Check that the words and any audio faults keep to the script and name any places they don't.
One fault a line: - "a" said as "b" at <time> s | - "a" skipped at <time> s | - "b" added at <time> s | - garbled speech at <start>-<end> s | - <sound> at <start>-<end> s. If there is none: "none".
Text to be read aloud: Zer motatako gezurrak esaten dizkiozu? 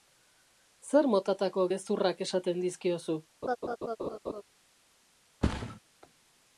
- laugh at 3.4-4.4 s
- thud at 5.4-5.8 s